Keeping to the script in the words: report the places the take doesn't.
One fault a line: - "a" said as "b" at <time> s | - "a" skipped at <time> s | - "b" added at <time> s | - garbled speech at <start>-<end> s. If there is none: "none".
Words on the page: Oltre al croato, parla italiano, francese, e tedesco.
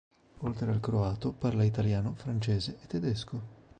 none